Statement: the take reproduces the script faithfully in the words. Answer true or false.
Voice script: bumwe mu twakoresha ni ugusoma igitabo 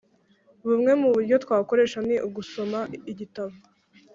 false